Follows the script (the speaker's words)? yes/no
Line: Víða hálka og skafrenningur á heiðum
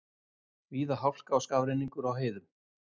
yes